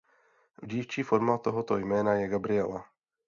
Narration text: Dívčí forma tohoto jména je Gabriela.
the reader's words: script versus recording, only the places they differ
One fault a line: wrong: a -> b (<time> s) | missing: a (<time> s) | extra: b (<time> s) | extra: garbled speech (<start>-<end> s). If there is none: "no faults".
no faults